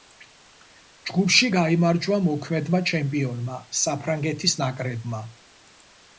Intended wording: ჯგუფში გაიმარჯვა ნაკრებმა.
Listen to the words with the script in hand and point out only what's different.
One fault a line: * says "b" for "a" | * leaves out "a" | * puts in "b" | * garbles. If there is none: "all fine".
* puts in "მოქმედმა ჩემპიონმა საფრანგეთის"